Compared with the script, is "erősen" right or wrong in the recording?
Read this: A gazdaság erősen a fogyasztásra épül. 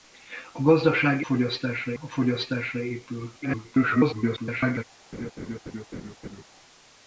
wrong